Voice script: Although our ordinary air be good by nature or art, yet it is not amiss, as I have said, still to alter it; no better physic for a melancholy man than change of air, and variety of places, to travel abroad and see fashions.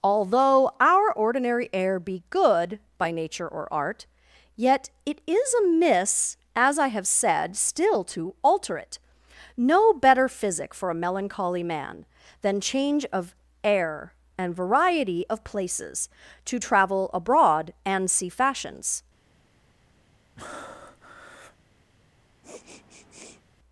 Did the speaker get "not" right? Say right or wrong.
wrong